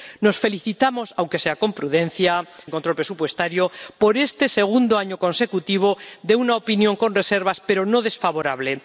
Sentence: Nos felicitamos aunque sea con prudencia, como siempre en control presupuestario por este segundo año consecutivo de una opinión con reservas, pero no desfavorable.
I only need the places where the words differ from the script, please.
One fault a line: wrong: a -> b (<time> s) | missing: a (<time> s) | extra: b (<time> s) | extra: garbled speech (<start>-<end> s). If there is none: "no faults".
missing: como siempre (2.5 s)